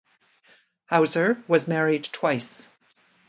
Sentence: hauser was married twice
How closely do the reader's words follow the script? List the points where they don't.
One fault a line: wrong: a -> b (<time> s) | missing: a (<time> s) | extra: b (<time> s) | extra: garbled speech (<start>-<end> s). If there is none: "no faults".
no faults